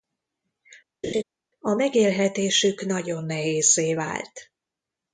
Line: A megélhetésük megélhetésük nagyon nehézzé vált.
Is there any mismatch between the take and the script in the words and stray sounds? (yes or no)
yes